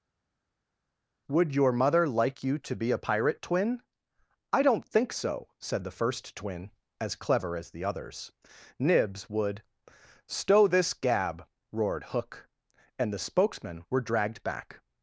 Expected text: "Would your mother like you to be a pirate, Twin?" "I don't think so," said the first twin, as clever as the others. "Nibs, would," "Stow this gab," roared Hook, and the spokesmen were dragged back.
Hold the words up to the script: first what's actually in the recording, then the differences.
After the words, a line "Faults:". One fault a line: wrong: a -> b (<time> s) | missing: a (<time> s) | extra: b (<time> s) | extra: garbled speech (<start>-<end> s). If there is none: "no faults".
"Would your mother like you to be a pirate, Twin?" "I don't think so," said the first twin, as clever as the others. "Nibs, would," "Stow this gab," roared Hook, and the spokesmen were dragged back.
Faults:
no faults